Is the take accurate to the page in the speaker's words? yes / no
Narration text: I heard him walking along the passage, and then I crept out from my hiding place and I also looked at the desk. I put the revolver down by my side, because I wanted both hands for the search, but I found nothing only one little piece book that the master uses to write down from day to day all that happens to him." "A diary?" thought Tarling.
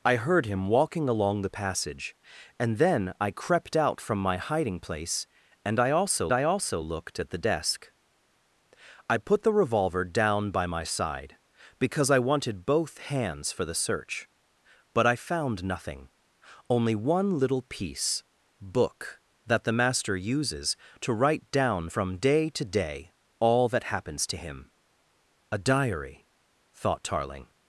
no